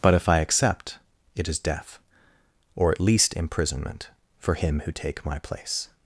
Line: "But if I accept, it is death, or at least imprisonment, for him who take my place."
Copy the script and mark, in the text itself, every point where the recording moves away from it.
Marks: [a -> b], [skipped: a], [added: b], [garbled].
"But if I accept, it is death, or at least imprisonment, for him who take my place."